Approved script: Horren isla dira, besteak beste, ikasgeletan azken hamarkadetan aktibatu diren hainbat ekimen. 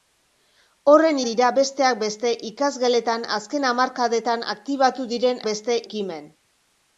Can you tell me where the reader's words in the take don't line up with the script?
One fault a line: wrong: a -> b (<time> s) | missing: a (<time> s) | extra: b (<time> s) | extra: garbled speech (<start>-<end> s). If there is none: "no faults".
missing: isla (1.2 s)
wrong: hainbat -> beste (5.5 s)